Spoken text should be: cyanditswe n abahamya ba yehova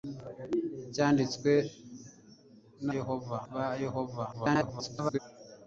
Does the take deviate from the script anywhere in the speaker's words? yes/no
yes